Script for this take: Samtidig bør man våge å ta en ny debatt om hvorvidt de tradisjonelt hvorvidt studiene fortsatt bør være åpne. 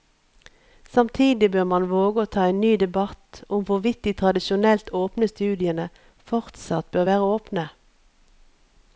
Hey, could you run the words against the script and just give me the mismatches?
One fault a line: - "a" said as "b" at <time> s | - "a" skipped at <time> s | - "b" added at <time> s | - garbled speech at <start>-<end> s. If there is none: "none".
- "hvorvidt" said as "åpne" at 5.0 s